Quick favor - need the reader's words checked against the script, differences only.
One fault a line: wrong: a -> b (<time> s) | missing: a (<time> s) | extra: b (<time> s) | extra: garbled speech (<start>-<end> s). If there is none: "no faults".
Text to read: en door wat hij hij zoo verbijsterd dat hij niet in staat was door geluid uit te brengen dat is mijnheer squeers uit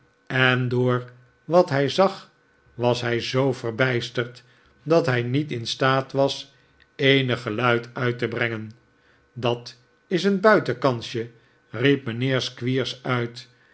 extra: zag was (1.9 s)
wrong: door -> eenig (6.9 s)
extra: een buitenkansje riep (10.2 s)